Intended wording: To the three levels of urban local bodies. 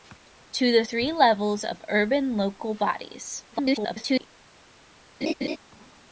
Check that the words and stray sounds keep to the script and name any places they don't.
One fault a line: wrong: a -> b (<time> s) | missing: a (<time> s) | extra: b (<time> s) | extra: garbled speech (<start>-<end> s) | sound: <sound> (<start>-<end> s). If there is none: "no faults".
extra: garbled speech (3.5-4.3 s)
sound: laugh (5.2-5.6 s)